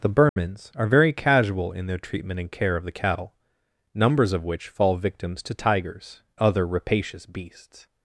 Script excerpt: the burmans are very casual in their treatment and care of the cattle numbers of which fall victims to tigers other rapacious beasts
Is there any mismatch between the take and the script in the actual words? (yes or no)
no